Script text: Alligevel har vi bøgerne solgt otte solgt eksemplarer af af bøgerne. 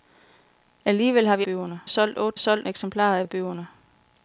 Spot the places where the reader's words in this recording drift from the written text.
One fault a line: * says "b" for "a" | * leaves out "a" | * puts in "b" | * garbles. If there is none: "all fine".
all fine